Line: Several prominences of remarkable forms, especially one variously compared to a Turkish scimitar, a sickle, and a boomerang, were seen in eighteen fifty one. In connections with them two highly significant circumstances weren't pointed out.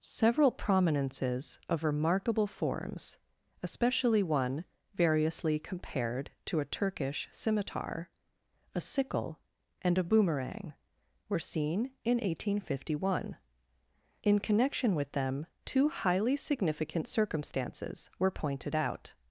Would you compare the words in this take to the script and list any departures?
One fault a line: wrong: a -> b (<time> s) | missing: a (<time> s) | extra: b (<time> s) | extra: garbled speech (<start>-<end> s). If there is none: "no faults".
wrong: connections -> connection (14.4 s)
wrong: weren't -> were (18.2 s)